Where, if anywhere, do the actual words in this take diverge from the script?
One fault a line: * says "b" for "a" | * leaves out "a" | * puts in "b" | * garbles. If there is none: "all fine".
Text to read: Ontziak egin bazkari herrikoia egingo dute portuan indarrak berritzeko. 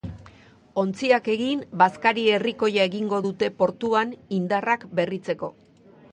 all fine